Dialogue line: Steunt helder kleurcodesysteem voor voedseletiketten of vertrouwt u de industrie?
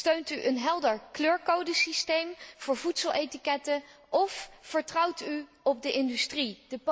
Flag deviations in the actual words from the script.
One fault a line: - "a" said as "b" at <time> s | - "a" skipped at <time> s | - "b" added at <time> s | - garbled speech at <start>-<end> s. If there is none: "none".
- "u een" added at 0.3 s
- "op" added at 5.6 s